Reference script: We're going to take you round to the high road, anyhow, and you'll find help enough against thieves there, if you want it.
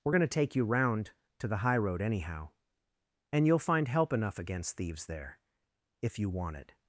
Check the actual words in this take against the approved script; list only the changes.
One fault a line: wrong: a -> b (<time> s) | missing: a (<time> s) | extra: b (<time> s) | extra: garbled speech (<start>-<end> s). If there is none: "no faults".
no faults